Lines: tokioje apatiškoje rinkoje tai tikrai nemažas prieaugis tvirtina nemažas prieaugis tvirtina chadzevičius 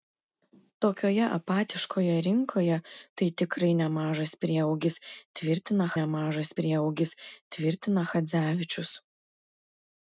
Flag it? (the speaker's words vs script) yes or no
no